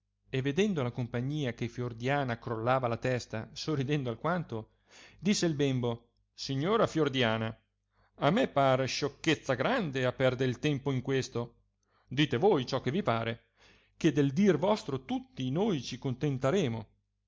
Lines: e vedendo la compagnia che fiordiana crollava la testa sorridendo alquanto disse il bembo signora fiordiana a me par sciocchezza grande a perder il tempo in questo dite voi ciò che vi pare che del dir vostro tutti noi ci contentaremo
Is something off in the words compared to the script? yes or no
no